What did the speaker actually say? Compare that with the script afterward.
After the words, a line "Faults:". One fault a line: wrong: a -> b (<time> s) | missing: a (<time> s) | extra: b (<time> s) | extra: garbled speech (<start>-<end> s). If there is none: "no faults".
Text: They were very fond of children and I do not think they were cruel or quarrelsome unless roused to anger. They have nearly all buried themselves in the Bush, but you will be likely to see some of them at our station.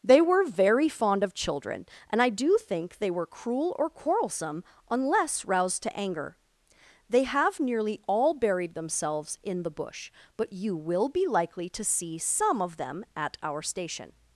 They were very fond of children and I do think they were cruel or quarrelsome unless roused to anger. They have nearly all buried themselves in the Bush, but you will be likely to see some of them at our station.
Faults:
missing: not (2.6 s)